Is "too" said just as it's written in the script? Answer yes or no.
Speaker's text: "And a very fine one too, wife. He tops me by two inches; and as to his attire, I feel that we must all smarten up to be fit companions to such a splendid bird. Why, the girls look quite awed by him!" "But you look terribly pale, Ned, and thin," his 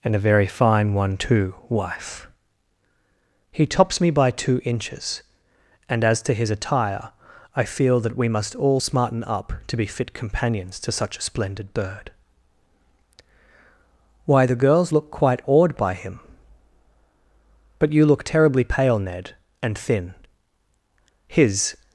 yes